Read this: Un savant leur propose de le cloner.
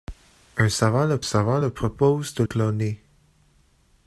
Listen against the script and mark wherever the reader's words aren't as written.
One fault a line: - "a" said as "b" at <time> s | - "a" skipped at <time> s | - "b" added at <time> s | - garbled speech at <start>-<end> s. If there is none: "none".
- "savant leur" added at 1.2 s
- "le" skipped at 2.4 s